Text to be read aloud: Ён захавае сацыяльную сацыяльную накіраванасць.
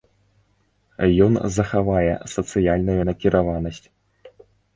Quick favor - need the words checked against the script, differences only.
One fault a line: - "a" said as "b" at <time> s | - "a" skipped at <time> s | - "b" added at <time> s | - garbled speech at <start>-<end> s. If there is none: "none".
- "сацыяльную" skipped at 3.0 s